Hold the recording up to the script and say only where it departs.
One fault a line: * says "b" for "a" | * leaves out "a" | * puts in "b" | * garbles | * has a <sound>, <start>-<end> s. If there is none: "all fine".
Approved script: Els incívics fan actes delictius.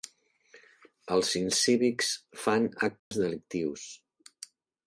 * has a dropout, 3.0-3.1 s